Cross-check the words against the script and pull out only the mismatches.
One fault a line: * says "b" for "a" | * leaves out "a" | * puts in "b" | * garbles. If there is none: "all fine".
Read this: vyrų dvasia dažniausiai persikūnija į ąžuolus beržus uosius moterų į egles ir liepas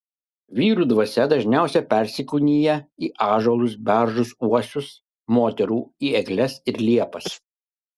all fine